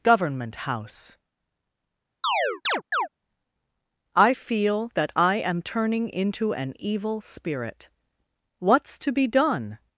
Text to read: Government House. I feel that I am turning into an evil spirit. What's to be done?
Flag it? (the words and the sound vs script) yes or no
yes